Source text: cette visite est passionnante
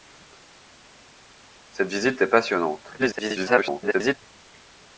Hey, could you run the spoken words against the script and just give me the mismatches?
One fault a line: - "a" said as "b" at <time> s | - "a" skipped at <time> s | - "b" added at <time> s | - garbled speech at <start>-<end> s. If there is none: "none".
- garbled speech at 3.0-4.1 s